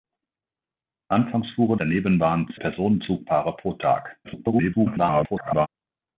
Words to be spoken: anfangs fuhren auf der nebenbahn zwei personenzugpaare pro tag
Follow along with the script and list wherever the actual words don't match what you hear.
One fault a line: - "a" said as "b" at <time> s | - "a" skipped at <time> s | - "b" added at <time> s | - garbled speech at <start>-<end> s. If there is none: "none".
- "auf" skipped at 1.8 s
- "zwei" skipped at 2.5 s
- garbled speech at 4.2-5.7 s